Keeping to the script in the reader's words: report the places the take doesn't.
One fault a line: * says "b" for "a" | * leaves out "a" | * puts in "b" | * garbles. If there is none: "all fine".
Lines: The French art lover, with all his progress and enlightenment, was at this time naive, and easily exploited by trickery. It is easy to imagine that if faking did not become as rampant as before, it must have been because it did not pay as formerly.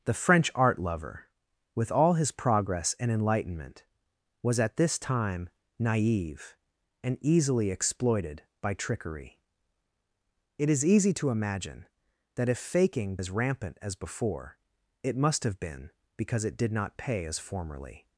* leaves out "did not become"